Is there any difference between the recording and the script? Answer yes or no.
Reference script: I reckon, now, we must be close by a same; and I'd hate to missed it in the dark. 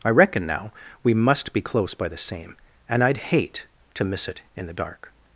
yes